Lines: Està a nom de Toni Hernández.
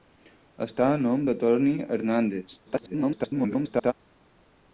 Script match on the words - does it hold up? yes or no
no